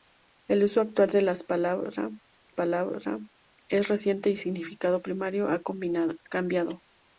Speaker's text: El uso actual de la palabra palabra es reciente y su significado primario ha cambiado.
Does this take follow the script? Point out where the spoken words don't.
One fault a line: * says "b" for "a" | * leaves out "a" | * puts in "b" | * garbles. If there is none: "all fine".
all fine